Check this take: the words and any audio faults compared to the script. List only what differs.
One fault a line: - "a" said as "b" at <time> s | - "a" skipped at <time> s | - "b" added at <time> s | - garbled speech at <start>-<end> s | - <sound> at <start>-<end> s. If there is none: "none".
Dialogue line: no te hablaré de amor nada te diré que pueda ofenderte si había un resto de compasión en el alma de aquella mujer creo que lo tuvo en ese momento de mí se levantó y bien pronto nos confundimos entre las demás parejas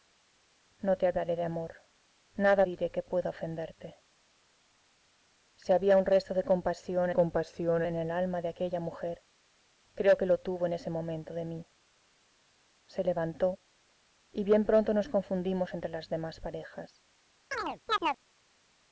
- "te" skipped at 2.6 s
- "compasión" added at 7.1 s
- chirp at 17.5-18.2 s